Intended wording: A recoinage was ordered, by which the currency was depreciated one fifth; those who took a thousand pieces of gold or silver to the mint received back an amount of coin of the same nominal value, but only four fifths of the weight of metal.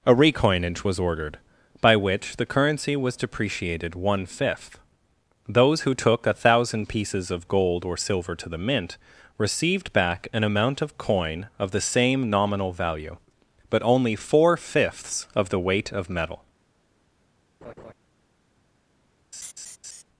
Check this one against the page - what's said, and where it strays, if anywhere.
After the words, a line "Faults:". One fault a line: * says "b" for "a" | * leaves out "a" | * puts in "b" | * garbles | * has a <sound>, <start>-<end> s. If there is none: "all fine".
A recoinage was ordered, by which the currency was depreciated one fifth; those who took a thousand pieces of gold or silver to the mint received back an amount of coin of the same nominal value, but only four fifths of the weight of metal.
Faults:
* has a laugh, 17.6-17.9 s
* has a laugh, 19.3-20.0 s